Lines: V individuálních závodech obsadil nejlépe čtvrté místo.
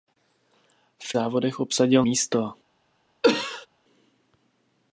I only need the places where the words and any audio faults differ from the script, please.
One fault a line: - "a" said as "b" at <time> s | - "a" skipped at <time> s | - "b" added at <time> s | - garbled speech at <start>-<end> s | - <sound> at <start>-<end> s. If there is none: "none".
- "individuálních" skipped at 1.1 s
- "nejlépe čtvrté" skipped at 2.1 s
- cough at 3.2-3.7 s